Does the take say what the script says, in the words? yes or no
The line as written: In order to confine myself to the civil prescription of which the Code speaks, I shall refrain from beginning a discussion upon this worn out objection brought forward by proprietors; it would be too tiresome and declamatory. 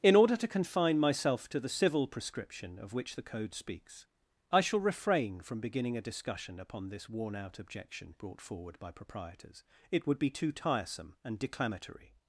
yes